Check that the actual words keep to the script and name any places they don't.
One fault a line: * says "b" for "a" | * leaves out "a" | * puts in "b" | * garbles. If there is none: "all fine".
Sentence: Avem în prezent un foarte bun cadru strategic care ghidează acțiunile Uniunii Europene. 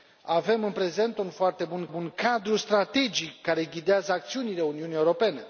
* puts in "bun"